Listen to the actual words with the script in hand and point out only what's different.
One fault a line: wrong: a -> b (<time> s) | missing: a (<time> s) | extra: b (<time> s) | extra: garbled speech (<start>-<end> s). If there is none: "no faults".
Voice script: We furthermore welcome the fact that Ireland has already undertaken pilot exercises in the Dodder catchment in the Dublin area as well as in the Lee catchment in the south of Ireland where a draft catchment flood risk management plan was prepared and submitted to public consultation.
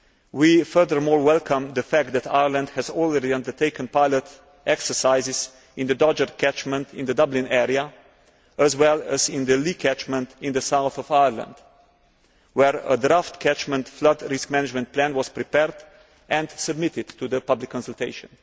no faults